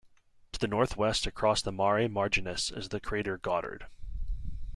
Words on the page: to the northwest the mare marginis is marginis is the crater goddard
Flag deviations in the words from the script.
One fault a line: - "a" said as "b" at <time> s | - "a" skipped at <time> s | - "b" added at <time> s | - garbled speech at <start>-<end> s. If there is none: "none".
- "across" added at 1.3 s
- "marginis is" skipped at 2.9 s